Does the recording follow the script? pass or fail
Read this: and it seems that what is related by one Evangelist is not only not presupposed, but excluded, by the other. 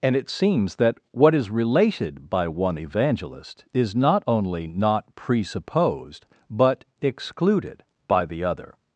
pass